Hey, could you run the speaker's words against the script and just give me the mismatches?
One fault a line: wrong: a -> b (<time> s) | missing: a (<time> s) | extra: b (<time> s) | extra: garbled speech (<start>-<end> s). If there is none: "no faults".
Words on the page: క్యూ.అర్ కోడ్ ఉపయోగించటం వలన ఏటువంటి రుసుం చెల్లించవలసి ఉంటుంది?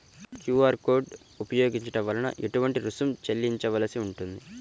no faults